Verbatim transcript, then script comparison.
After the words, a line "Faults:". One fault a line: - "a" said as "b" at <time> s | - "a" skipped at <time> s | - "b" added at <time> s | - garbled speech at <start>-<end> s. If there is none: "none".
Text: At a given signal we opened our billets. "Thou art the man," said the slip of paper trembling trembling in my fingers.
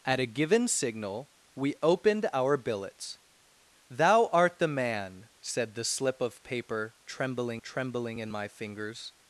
At a given signal we opened our billets. "Thou art the man," said the slip of paper trembling trembling in my fingers.
Faults:
none